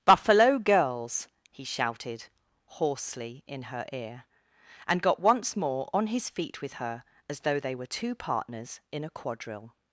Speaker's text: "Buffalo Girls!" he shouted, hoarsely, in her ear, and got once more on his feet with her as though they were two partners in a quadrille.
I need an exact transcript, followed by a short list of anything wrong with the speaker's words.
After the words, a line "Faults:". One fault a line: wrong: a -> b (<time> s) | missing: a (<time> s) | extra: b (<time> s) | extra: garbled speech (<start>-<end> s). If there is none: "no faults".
"Buffalo Girls!" he shouted, hoarsely, in her ear, and got once more on his feet with her as though they were two partners in a quadrille.
Faults:
no faults